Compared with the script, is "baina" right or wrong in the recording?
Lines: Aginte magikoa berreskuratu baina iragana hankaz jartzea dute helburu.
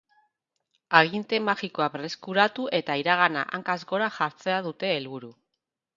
wrong